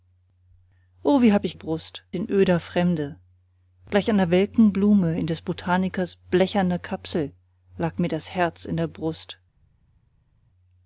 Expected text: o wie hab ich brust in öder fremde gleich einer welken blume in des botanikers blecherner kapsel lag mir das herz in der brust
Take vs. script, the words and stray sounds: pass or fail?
pass